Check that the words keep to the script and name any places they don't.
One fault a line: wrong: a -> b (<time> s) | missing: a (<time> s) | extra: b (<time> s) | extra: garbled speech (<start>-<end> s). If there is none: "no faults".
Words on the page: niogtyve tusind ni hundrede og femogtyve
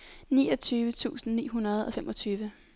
no faults